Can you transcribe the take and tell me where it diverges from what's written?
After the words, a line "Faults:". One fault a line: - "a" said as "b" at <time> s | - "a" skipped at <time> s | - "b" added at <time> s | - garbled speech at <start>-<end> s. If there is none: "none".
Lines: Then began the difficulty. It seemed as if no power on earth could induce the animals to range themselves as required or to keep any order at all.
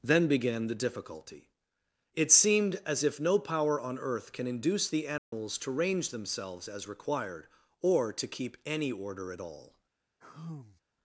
Then began the difficulty. It seemed as if no power on earth can induce the animals to range themselves as required or to keep any order at all.
Faults:
- "could" said as "can" at 4.3 s